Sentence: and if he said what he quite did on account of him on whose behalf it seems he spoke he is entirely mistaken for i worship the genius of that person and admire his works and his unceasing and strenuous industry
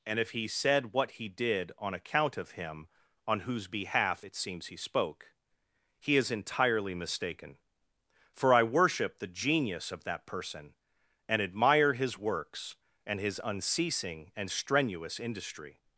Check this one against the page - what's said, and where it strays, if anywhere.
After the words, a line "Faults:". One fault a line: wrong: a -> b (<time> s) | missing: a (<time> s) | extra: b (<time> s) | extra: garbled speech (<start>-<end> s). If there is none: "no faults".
and if he said what he did on account of him on whose behalf it seems he spoke he is entirely mistaken for i worship the genius of that person and admire his works and his unceasing and strenuous industry
Faults:
missing: quite (1.3 s)